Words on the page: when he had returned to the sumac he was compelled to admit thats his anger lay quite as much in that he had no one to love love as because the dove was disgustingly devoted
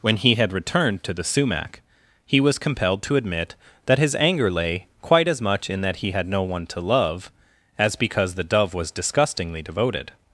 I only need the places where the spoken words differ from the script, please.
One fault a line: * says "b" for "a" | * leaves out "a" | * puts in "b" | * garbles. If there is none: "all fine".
* says "that" for "thats"
* leaves out "love"